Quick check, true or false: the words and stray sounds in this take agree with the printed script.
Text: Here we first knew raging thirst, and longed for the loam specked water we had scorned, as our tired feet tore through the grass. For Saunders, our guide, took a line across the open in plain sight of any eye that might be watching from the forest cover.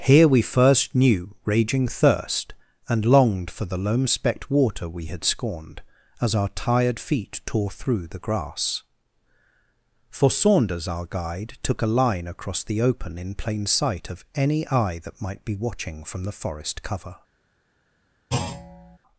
false